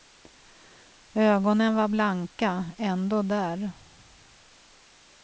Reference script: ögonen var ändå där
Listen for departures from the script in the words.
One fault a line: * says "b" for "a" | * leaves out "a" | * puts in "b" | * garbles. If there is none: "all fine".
* puts in "blanka"